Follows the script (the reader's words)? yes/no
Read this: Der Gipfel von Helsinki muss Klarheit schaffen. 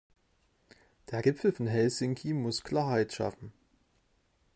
yes